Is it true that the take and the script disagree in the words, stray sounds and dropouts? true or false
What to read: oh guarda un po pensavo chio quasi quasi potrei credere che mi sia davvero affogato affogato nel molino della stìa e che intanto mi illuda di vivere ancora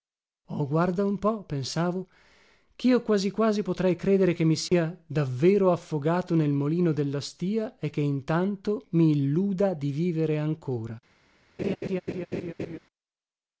true